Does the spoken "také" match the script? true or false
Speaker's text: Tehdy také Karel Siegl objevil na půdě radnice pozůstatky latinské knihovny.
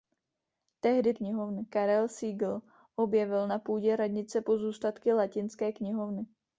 false